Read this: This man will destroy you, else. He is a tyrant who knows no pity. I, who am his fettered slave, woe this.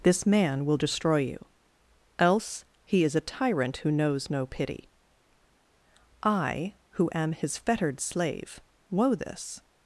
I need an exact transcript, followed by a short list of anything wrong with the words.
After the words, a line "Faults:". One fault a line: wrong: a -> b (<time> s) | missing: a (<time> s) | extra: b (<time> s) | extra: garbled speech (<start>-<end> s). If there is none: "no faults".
This man will destroy you, else. He is a tyrant who knows no pity. I, who am his fettered slave, woe this.
Faults:
no faults